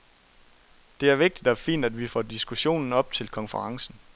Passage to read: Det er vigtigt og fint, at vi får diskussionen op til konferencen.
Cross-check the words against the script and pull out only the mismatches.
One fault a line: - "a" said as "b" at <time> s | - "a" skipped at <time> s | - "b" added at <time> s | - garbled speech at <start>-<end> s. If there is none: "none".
none